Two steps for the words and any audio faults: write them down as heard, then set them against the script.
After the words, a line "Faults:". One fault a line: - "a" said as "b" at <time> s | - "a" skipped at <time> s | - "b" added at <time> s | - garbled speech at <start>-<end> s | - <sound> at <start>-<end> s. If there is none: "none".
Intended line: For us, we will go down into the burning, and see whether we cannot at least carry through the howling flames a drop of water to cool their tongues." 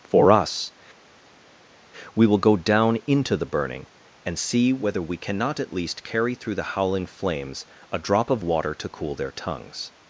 For us, we will go down into the burning, and see whether we cannot at least carry through the howling flames a drop of water to cool their tongues."
Faults:
none